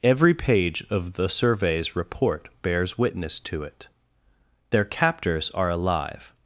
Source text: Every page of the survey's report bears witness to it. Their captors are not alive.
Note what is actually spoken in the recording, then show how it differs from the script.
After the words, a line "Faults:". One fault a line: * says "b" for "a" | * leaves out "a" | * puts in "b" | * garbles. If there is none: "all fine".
Every page of the survey's report bears witness to it. Their captors are alive.
Faults:
* leaves out "not"